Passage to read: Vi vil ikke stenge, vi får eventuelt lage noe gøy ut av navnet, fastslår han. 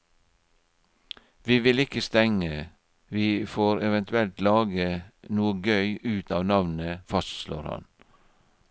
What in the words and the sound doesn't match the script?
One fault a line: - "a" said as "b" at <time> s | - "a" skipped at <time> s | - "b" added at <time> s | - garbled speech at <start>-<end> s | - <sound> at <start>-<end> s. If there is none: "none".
none